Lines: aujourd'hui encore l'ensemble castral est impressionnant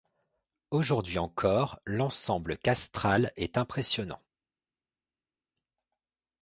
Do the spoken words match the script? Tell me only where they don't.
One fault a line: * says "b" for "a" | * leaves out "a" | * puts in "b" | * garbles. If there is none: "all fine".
all fine